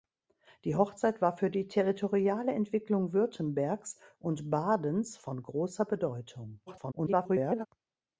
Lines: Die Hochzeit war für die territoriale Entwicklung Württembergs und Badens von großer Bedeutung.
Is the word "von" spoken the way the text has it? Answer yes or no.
yes